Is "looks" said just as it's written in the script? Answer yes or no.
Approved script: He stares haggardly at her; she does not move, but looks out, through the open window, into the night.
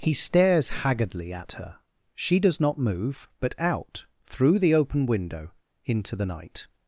no